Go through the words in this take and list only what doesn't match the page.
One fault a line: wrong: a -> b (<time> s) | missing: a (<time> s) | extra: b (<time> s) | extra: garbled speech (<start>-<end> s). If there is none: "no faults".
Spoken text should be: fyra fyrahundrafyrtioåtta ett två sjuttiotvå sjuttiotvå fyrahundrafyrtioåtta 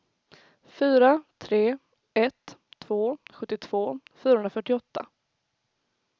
wrong: fyrahundrafyrtioåtta -> tre (1.4 s)
missing: sjuttiotvå (4.0 s)